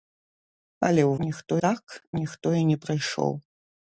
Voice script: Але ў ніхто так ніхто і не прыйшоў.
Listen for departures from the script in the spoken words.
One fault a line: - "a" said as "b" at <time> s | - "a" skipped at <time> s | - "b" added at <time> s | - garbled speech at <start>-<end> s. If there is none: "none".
none